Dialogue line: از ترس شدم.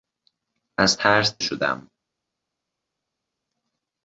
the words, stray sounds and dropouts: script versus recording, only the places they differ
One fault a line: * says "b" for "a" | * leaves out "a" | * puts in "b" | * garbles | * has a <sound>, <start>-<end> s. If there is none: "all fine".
all fine